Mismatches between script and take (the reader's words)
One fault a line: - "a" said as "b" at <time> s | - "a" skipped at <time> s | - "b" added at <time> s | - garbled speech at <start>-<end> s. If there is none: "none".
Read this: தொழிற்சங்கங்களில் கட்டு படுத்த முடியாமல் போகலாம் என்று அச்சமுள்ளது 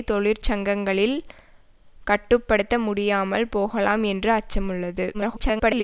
- garbled speech at 5.1-5.8 s